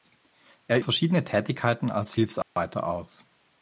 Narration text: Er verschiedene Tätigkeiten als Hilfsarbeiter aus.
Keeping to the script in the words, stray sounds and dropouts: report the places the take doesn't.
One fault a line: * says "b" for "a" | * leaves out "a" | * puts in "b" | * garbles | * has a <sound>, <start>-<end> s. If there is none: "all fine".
* has a dropout, 2.4-2.6 s